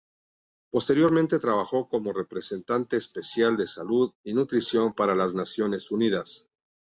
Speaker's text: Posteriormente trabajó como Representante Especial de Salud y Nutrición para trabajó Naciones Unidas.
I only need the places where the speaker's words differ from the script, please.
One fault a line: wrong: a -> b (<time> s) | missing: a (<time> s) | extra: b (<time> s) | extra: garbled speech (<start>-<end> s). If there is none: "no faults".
wrong: trabajó -> las (5.1 s)